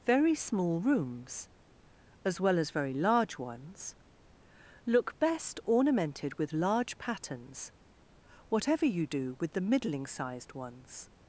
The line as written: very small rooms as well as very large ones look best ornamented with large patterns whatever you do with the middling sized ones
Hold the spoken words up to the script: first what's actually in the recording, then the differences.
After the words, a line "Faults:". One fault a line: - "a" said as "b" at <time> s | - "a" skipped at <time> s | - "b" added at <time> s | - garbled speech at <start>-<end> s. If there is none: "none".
very small rooms as well as very large ones look best ornamented with large patterns whatever you do with the middling sized ones
Faults:
none